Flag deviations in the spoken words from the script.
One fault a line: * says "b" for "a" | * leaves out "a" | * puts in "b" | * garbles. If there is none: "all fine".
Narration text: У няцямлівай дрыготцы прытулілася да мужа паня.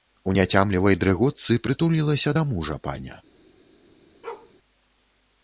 all fine